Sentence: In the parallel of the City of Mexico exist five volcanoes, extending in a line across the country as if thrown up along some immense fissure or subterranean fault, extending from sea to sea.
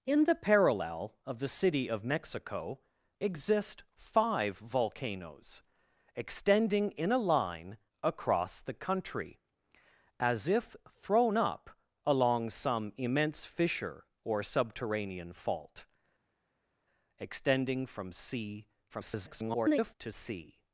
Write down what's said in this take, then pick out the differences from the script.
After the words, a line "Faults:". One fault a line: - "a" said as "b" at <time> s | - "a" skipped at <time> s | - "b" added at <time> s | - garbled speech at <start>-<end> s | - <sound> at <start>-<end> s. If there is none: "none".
In the parallel of the City of Mexico exist five volcanoes, extending in a line across the country as if thrown up along some immense fissure or subterranean fault, extending from sea [garbled] to sea.
Faults:
- garbled speech at 18.9-19.9 s